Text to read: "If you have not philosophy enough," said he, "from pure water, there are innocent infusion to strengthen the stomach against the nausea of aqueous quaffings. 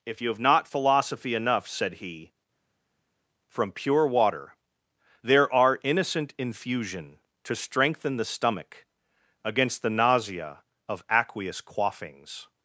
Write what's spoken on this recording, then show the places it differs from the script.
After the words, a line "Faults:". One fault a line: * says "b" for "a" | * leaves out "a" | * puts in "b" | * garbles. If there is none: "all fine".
"If you have not philosophy enough," said he, "from pure water, there are innocent infusion to strengthen the stomach against the nausea of aqueous quaffings.
Faults:
all fine